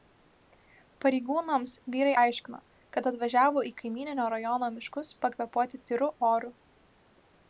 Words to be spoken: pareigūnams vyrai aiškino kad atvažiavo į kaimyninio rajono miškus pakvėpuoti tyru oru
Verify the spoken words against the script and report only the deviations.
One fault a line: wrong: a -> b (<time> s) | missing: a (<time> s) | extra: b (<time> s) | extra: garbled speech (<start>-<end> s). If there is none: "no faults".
no faults